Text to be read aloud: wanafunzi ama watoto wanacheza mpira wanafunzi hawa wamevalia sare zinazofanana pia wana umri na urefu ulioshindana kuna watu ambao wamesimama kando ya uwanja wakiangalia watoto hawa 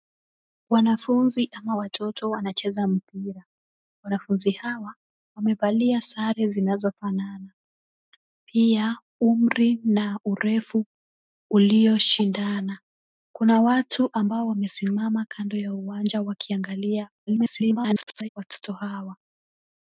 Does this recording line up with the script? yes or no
no